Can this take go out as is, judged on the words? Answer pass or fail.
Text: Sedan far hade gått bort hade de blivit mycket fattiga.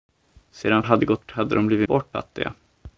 fail